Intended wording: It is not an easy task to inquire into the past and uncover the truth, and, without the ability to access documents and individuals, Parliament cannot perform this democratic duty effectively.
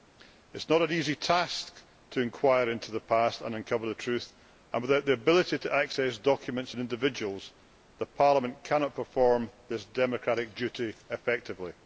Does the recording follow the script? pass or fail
pass